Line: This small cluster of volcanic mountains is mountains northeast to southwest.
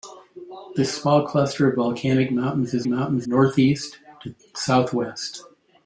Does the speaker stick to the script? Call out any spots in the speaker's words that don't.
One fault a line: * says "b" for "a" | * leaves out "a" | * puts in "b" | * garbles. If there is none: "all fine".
all fine